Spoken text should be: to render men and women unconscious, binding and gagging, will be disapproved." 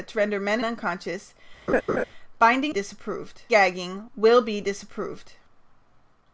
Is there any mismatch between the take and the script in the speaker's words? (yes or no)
yes